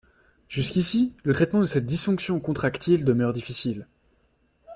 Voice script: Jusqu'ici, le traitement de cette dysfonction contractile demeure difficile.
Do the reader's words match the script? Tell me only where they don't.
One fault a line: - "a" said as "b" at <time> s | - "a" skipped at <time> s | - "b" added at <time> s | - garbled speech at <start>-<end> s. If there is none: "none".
none